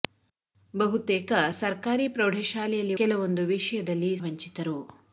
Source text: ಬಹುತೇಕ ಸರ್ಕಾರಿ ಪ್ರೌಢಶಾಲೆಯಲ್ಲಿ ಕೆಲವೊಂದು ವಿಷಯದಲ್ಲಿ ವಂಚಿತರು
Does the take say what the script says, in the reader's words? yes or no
yes